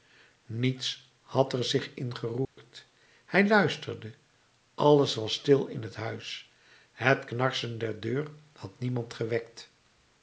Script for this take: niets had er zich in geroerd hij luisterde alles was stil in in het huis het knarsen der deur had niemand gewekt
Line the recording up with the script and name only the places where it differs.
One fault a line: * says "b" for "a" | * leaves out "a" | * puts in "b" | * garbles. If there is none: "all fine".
* leaves out "in"